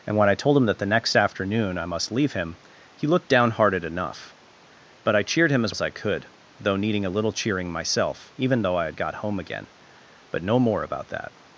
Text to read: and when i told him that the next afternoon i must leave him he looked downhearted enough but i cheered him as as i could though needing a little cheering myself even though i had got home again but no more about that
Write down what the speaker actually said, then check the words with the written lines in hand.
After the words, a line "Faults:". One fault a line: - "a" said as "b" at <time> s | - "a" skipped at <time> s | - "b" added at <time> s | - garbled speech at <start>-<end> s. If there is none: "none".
and when i told him that the next afternoon i must leave him he looked downhearted enough but i cheered him as as i could though needing a little cheering myself even though i had got home again but no more about that
Faults:
none